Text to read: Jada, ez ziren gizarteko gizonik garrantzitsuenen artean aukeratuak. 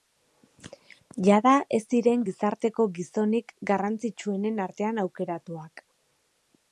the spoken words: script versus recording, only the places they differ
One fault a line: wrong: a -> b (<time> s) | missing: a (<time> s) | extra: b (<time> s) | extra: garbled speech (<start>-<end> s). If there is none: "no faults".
no faults